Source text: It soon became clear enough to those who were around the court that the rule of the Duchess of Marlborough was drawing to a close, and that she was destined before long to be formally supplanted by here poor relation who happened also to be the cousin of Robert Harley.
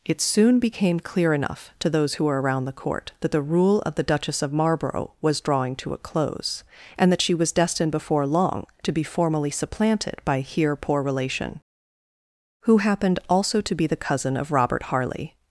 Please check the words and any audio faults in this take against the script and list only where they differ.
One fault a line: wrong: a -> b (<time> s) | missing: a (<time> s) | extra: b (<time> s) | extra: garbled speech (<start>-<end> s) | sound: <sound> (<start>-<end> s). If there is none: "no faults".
no faults